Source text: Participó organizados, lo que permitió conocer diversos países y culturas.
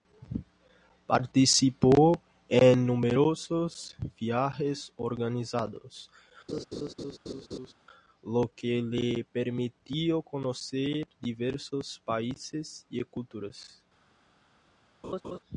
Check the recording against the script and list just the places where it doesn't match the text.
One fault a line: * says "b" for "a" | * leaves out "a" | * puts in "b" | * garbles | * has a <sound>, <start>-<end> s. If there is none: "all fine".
* puts in "en numerosos viajes"
* has a laugh, 6.5-7.7 s
* puts in "le"
* has a laugh, 15.0-15.4 s